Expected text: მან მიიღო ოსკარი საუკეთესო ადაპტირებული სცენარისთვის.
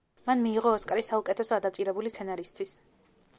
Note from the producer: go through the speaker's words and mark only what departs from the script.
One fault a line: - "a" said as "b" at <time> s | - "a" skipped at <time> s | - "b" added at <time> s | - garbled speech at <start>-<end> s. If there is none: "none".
none